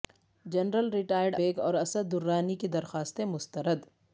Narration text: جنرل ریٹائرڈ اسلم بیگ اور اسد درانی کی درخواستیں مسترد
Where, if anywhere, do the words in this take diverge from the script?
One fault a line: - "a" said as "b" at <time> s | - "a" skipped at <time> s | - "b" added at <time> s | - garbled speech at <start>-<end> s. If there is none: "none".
- "اسلم" skipped at 1.4 s